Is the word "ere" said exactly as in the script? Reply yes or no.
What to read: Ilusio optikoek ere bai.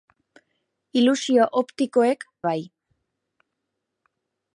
no